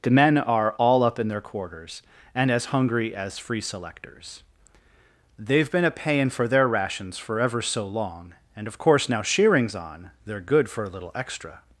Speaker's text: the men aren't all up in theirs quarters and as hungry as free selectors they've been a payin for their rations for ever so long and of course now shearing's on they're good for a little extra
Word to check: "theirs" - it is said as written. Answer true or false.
false